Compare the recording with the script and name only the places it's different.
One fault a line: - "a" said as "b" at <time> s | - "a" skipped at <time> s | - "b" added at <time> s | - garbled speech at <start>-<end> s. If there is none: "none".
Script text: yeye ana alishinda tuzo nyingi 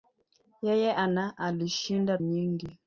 - "tuzo" skipped at 2.2 s